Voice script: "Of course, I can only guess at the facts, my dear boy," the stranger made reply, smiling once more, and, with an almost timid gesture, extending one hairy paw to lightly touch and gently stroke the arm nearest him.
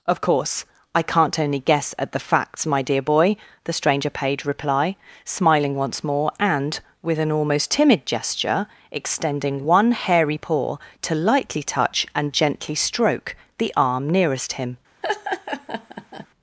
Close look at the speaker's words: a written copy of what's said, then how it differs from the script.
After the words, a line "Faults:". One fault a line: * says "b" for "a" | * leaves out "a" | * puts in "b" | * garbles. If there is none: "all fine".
"Of course, I can't only guess at the facts, my dear boy," the stranger paid reply, smiling once more, and, with an almost timid gesture, extending one hairy paw to lightly touch and gently stroke the arm nearest him.
Faults:
* says "can't" for "can"
* says "paid" for "made"